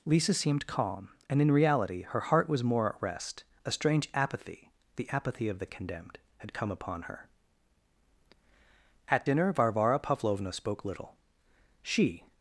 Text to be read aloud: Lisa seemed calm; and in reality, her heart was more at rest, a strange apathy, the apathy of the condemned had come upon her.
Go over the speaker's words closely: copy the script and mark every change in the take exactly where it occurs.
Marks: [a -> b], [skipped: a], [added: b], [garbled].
Lisa seemed calm; and in reality, her heart was more at rest, a strange apathy, the apathy of the condemned had come upon her. [added: At dinner Varvara Pavlovna spoke little she]